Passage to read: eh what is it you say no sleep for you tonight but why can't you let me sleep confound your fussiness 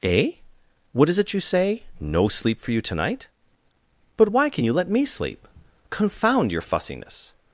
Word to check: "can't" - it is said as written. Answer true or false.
false